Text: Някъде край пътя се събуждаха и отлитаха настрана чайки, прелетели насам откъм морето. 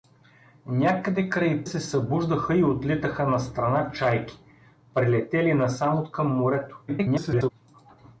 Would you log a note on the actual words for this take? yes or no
yes